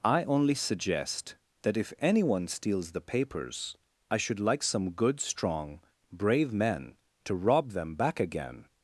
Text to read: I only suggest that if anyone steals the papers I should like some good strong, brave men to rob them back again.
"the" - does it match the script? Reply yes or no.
yes